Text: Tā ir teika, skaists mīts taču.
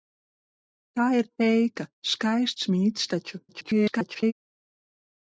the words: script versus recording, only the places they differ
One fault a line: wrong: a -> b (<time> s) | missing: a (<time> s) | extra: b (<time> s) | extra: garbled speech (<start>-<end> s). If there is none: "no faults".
extra: garbled speech (3.5-4.3 s)